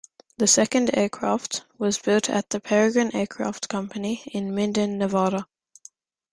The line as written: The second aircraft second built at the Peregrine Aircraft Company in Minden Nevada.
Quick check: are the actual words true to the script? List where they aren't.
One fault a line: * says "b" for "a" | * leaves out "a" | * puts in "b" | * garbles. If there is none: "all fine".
* says "was" for "second"